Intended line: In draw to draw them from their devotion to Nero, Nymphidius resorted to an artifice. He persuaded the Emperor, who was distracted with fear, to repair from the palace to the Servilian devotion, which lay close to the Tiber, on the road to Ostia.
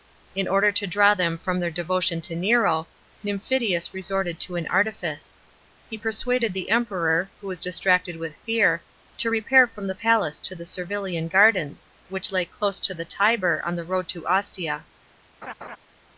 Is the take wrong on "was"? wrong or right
right